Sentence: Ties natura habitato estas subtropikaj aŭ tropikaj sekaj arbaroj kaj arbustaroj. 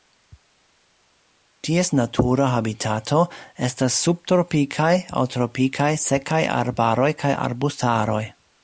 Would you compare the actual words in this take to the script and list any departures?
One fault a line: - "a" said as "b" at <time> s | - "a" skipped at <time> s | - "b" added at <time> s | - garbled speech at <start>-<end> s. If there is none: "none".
none